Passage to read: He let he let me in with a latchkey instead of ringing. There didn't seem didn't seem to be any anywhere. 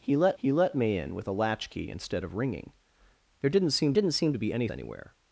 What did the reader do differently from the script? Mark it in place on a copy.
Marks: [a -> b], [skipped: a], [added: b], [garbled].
He let he let me in with a latchkey instead of ringing. There didn't seem didn't seem to be any anywhere.